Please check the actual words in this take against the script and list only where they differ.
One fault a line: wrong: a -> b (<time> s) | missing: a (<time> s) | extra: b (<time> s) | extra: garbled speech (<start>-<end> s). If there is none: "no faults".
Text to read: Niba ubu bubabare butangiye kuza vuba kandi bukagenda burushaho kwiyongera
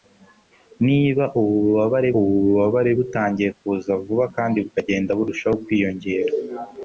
extra: ubu bubabare (2.2 s)